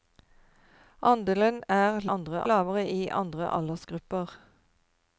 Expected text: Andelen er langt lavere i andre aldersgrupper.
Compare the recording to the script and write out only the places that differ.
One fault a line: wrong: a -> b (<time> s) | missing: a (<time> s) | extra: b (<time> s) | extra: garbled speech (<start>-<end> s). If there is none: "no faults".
wrong: langt -> andre (2.2 s)